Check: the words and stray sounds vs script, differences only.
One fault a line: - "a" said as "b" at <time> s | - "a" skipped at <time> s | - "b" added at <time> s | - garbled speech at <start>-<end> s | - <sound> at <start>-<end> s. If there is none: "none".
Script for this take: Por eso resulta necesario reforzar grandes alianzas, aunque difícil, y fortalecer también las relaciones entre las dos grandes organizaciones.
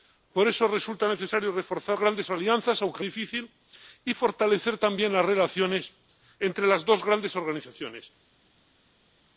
none